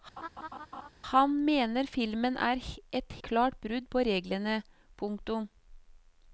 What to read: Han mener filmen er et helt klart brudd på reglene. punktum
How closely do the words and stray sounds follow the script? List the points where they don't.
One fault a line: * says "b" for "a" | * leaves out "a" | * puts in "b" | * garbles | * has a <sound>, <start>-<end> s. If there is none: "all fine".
* has a laugh, 0.2-0.9 s
* leaves out "helt"